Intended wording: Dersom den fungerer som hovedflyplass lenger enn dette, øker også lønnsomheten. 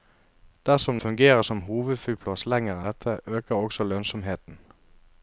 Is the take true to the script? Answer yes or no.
no